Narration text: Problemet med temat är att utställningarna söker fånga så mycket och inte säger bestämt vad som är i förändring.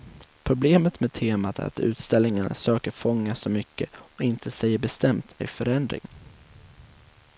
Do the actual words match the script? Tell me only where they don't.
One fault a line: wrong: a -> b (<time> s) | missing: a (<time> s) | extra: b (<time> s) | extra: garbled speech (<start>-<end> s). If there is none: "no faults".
missing: vad som är (5.3 s)